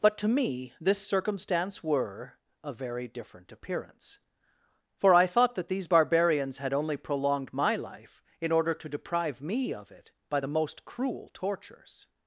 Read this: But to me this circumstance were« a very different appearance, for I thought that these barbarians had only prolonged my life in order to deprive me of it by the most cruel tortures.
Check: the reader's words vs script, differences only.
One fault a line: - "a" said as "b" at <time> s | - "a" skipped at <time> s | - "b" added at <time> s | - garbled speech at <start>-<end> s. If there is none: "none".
none